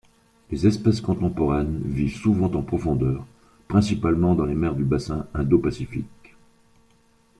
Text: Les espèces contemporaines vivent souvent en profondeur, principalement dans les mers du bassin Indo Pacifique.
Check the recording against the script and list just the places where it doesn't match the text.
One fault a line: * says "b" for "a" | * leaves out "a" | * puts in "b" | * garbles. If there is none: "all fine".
all fine